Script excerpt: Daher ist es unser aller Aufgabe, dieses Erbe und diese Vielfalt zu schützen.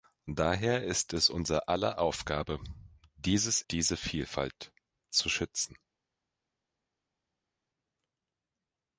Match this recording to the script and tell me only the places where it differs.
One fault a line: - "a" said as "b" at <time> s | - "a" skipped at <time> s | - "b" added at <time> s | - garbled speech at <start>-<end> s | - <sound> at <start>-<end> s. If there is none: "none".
- "Erbe und" skipped at 3.6 s